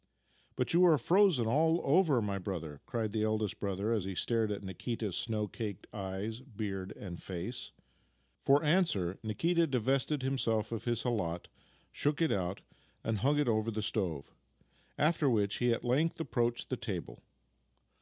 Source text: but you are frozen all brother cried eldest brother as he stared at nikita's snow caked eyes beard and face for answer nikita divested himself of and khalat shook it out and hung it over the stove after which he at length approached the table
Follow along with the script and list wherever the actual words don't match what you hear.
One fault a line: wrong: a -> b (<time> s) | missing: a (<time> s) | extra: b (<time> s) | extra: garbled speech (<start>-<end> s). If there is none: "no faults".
extra: over my (1.8 s)
extra: the (3.1 s)
wrong: and -> his (10.8 s)